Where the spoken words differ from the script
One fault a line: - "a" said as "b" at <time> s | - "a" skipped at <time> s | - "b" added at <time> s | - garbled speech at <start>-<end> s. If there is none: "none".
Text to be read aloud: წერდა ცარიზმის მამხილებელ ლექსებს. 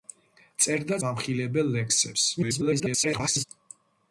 - "ცარიზმის" skipped at 1.0 s
- garbled speech at 2.4-3.4 s